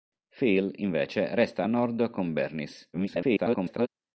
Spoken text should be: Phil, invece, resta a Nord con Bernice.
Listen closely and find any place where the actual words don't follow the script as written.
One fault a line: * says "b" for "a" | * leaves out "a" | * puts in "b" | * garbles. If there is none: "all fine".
* garbles